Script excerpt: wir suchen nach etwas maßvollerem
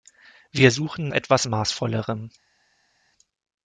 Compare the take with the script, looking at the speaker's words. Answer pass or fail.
fail